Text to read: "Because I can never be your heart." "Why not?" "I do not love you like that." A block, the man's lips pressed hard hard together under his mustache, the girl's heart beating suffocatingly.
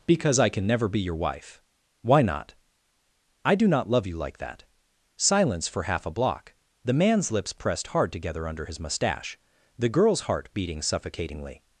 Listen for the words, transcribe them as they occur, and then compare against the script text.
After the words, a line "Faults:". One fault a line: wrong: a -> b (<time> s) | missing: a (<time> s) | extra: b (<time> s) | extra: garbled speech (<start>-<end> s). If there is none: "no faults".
"Because I can never be your wife." "Why not?" "I do not love you like that." Silence for half a block, the man's lips pressed hard together under his mustache, the girl's heart beating suffocatingly.
Faults:
wrong: heart -> wife (1.1 s)
extra: Silence for half (5.2 s)
missing: hard (8.1 s)